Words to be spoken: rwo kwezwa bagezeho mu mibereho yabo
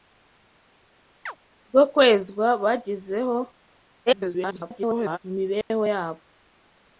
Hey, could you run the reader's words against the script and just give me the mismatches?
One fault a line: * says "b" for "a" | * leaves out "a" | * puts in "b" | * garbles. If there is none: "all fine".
* garbles